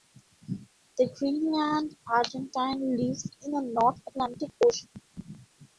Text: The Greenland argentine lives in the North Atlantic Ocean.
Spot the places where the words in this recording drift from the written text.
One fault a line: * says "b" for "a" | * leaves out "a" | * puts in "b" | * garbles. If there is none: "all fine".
all fine